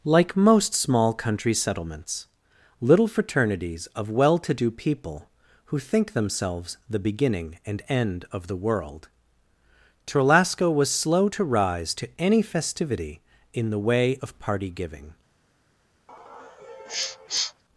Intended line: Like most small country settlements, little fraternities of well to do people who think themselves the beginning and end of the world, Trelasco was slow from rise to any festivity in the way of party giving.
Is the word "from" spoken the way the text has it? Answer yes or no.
no